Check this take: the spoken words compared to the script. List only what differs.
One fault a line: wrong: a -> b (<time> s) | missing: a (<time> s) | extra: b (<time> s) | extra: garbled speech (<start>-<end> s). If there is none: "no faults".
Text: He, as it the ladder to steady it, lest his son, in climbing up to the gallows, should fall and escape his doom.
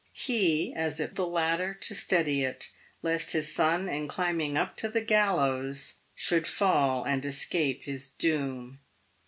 no faults